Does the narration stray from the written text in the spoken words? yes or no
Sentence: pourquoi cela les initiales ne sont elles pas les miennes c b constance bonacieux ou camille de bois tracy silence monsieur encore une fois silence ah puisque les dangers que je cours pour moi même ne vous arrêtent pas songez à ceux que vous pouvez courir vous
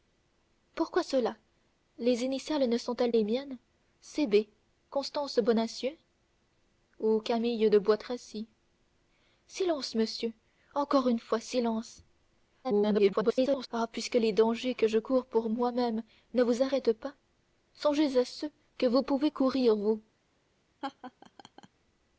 yes